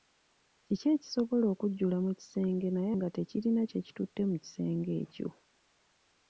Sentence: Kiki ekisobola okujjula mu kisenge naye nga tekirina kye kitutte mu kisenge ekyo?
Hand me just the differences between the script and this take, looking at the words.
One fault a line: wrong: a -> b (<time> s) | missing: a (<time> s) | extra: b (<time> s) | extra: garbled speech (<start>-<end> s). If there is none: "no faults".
no faults